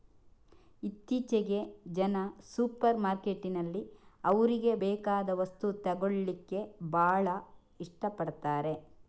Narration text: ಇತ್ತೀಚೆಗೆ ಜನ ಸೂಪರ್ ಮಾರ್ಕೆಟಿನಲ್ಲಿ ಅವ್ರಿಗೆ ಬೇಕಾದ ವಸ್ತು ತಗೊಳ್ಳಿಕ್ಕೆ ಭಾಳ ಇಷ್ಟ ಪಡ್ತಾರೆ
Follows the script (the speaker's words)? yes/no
yes